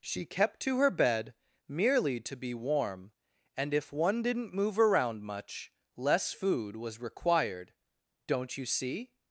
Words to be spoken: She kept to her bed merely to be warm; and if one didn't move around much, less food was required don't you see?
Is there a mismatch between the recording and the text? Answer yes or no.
no